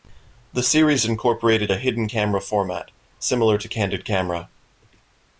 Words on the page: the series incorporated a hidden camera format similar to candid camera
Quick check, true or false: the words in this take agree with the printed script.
true